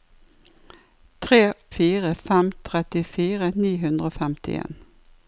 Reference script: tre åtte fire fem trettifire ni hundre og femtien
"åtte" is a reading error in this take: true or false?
true